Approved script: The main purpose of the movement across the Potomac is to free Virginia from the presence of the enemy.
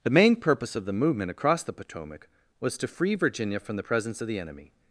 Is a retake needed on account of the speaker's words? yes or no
yes